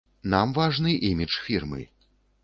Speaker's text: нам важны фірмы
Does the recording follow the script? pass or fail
fail